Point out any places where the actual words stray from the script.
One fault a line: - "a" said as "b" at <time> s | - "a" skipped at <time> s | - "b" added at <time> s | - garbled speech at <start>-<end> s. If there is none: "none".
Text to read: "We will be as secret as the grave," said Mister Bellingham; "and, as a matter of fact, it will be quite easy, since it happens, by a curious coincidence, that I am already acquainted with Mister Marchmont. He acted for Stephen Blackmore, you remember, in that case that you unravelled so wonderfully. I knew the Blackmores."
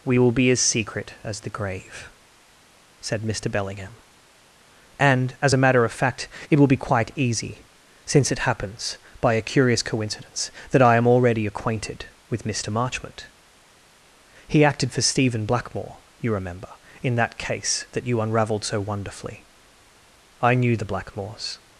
none